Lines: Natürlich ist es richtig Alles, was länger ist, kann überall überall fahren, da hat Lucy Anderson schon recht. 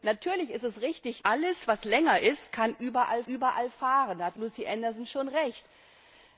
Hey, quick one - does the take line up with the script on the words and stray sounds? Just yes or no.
yes